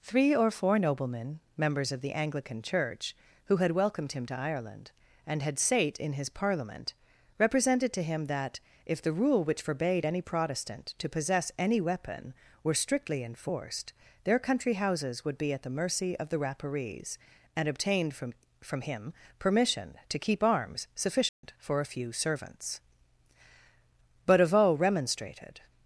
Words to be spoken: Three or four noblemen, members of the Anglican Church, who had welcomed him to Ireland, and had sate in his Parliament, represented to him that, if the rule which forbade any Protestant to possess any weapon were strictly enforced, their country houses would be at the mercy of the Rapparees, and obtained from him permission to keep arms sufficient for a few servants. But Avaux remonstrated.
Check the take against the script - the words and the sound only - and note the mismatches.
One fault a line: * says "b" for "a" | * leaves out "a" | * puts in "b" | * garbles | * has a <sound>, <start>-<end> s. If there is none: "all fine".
* puts in "from"
* has a dropout, 21.3-21.4 s